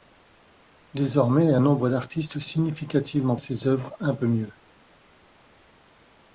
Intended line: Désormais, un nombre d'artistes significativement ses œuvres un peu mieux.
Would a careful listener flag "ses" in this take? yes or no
no